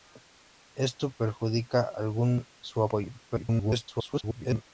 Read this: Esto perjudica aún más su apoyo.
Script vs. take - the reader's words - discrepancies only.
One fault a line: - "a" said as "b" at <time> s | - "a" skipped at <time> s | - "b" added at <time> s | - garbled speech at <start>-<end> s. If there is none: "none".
- "más" skipped at 2.5 s
- garbled speech at 3.3-4.6 s